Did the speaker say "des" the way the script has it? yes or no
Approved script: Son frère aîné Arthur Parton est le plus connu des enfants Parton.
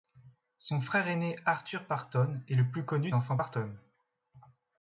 no